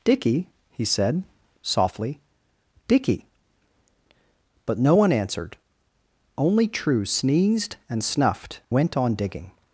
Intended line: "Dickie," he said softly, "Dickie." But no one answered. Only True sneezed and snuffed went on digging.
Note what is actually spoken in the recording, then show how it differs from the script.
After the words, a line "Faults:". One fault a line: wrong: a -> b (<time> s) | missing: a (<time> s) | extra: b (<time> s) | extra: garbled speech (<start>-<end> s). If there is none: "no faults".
"Dickie," he said softly, "Dickie." But no one answered. Only True sneezed and snuffed went on digging.
Faults:
no faults